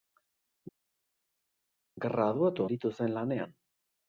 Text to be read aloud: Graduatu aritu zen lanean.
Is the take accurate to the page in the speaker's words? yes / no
yes